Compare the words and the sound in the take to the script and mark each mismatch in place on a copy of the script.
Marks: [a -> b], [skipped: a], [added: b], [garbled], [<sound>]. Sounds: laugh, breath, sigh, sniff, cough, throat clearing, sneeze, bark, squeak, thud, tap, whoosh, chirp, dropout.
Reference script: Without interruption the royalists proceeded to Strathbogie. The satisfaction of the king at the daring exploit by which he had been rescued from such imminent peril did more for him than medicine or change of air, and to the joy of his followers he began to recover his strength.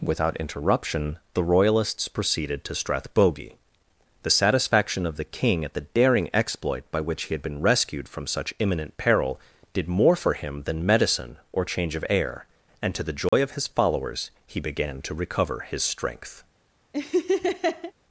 Without interruption the royalists proceeded to Strathbogie. The satisfaction of the king at the daring exploit by which he had been rescued from such imminent peril did more for him than medicine or change of air, and to the joy [dropout] of his followers he began to recover his strength. [laugh]